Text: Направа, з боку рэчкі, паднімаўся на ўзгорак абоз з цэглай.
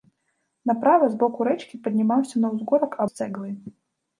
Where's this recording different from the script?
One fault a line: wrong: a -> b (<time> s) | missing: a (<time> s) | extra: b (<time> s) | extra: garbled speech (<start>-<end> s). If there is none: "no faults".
missing: абоз (3.0 s)